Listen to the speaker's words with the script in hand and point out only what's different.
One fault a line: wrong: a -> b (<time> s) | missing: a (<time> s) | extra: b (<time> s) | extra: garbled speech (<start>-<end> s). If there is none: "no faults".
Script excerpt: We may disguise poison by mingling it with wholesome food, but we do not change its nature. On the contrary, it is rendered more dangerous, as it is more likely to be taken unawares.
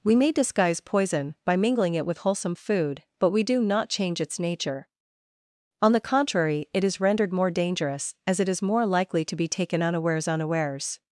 extra: unawares (10.3 s)